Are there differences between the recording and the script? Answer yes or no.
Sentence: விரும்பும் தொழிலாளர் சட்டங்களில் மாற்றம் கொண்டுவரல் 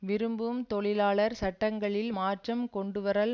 no